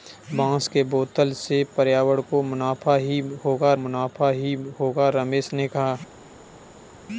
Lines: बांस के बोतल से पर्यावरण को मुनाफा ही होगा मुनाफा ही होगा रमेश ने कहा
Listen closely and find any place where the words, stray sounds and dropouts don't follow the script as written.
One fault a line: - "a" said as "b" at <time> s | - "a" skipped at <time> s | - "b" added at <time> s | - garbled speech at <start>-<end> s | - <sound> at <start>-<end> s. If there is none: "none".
none